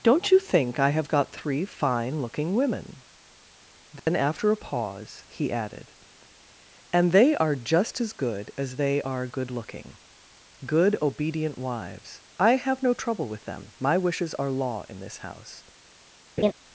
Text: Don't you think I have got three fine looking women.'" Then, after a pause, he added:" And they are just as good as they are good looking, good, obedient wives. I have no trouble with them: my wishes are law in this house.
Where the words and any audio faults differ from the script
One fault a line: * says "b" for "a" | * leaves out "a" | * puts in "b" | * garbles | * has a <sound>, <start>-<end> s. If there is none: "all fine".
* has a dropout, 4.0-4.1 s
* has a laugh, 16.4-16.5 s